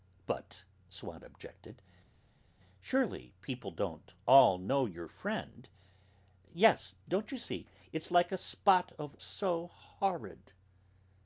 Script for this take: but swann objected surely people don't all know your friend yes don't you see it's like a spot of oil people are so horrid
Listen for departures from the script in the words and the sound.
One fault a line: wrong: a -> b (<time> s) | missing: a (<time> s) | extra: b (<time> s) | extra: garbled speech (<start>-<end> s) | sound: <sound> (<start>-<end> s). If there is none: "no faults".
missing: oil people are (9.2 s)